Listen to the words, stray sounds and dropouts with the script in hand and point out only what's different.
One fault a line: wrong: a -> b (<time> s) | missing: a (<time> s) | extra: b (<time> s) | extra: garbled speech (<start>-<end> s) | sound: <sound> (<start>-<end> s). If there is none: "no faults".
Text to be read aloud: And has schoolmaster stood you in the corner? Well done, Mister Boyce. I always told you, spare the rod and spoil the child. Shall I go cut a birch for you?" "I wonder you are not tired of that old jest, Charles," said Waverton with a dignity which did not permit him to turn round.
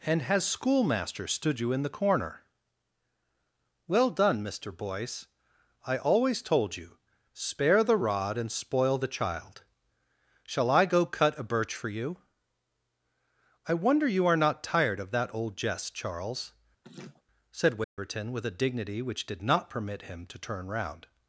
sound: laugh (16.8-17.2 s)
sound: dropout (17.8-18.0 s)